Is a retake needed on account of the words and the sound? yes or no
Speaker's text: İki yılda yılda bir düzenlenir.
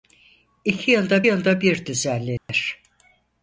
yes